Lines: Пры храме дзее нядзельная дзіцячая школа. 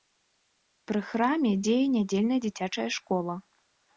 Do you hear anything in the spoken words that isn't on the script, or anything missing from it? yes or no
no